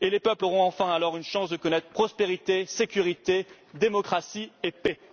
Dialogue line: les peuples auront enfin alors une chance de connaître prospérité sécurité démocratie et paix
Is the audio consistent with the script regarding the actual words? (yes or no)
yes